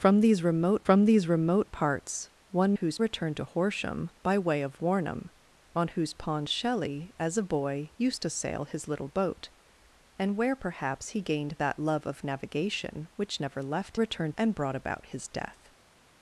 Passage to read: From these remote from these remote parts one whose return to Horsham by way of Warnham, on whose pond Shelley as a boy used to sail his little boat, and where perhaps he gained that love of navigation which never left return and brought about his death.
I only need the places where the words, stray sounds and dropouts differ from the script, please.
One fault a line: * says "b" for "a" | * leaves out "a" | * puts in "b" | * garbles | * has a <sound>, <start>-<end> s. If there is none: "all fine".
all fine